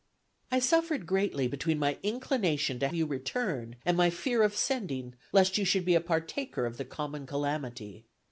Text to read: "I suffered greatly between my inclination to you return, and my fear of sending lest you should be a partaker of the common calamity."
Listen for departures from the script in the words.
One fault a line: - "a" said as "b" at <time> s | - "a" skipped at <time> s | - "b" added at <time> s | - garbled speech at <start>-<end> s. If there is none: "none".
none